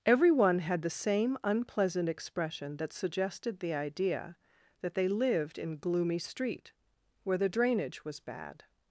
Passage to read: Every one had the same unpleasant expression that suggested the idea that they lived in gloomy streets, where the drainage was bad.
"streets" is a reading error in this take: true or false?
true